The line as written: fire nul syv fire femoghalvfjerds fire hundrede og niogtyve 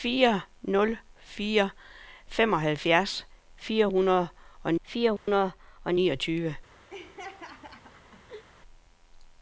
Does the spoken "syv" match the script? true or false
false